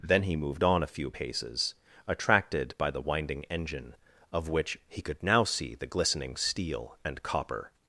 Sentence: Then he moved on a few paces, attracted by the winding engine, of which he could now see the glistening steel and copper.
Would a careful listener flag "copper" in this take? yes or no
no